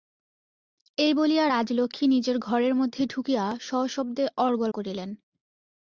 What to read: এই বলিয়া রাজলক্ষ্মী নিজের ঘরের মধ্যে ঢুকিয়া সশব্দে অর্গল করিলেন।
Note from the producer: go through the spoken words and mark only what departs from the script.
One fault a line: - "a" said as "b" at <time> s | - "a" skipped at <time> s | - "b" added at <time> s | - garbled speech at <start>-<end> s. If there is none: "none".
none